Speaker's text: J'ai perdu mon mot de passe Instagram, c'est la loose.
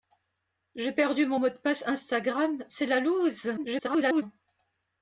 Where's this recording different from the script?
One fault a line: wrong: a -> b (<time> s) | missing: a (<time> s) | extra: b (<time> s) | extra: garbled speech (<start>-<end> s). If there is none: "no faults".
extra: garbled speech (3.6-4.2 s)